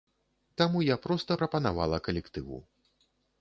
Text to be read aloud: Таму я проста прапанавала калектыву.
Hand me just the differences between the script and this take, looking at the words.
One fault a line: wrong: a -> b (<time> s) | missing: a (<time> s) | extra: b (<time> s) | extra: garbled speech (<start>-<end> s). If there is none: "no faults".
no faults